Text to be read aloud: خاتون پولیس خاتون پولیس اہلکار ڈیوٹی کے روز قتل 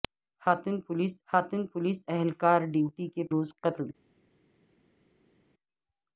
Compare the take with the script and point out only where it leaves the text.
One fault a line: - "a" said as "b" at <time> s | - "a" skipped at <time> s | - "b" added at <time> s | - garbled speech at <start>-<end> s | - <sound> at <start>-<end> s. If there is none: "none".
none